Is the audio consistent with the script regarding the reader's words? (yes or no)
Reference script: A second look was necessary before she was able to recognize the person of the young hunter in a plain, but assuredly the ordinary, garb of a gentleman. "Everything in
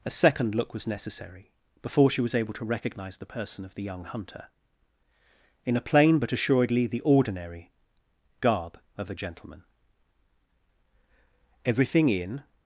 yes